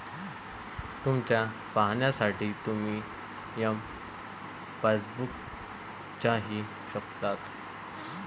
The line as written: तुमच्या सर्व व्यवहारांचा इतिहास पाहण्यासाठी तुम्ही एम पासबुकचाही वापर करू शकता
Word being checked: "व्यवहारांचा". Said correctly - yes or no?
no